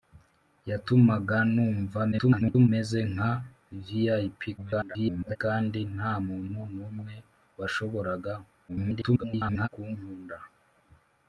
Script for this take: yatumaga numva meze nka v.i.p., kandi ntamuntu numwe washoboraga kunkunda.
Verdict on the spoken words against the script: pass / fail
fail